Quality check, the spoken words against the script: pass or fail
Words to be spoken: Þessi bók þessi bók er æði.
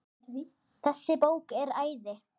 fail